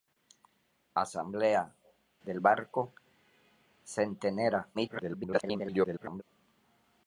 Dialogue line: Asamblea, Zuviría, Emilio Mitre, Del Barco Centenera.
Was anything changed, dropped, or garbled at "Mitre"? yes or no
yes